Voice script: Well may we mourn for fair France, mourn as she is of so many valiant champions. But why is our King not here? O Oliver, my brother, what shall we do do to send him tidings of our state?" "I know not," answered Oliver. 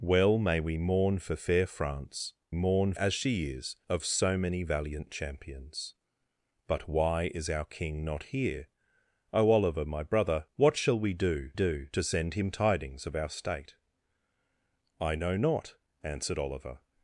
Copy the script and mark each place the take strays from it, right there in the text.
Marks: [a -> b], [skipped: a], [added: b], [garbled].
Well may we mourn for fair France, mourn as she is of so many valiant champions. But why is our King not here? O Oliver, my brother, what shall we do do to send him tidings of our state?" "I know not," answered Oliver.